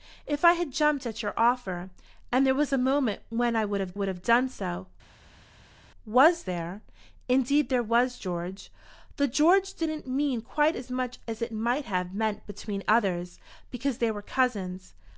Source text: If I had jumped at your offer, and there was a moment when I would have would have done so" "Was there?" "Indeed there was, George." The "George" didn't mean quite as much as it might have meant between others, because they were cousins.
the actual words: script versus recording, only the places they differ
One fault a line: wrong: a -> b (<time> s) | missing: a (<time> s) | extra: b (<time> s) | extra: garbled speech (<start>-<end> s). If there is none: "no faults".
no faults